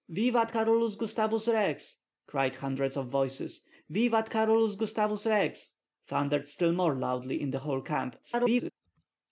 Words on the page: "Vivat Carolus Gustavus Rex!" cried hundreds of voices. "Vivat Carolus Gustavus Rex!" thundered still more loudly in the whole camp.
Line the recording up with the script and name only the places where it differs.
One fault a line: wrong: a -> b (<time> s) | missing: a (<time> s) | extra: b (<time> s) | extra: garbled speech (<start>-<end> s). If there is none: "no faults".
extra: garbled speech (8.2-8.7 s)